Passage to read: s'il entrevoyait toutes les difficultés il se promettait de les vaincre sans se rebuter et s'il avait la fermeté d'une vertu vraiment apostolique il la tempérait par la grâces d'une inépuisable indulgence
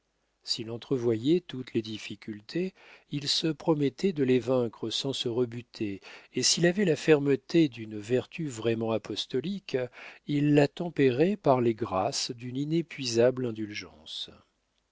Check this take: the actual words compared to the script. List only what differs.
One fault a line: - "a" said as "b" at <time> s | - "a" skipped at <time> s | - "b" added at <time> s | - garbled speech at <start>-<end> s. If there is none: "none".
- "la" said as "les" at 11.6 s